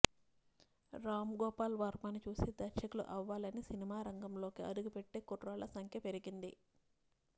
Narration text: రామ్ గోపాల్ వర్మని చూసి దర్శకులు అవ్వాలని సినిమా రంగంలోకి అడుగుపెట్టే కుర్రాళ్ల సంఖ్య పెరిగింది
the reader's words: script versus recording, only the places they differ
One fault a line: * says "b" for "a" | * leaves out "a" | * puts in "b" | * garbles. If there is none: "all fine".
all fine